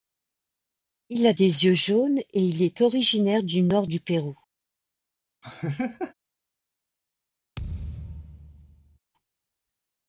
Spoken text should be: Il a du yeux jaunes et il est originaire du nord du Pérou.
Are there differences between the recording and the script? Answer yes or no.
yes